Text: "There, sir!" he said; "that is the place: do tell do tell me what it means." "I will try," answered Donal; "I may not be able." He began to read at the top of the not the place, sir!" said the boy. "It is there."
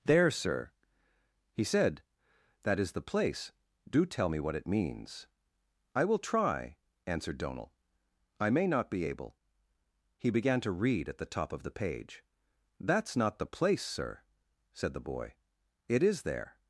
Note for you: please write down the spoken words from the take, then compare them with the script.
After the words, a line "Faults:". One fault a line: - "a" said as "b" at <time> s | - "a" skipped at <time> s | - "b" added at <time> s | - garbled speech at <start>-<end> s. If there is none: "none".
"There, sir!" he said; "that is the place: do tell me what it means." "I will try," answered Donal; "I may not be able." He began to read at the top of the page. "That's not the place, sir!" said the boy. "It is there."
Faults:
- "do tell" skipped at 4.3 s
- "page That's" added at 11.7 s